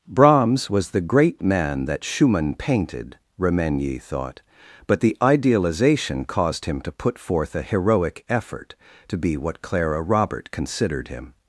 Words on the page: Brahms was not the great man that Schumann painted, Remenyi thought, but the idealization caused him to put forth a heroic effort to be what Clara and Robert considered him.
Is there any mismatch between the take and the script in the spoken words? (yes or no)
yes